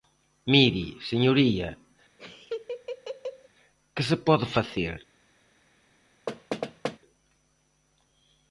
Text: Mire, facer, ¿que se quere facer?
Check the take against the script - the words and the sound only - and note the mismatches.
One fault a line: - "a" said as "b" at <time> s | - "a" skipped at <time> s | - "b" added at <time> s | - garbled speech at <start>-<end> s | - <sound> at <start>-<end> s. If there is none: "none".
- "facer" said as "señoría" at 1.1 s
- laugh at 2.2-3.5 s
- "quere" said as "pode" at 4.3 s
- thud at 6.3-7.0 s